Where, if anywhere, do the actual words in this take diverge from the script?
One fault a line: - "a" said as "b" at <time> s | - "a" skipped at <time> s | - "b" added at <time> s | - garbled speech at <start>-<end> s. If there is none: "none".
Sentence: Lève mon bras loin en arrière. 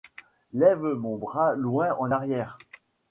none